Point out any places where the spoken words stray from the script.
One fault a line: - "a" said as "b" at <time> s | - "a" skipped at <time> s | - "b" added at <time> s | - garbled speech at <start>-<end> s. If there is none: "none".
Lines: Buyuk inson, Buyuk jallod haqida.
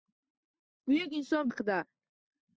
- "Buyuk jallod" skipped at 1.5 s